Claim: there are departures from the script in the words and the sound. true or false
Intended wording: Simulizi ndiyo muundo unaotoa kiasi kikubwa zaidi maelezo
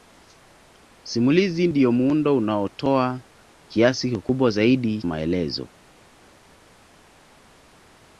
false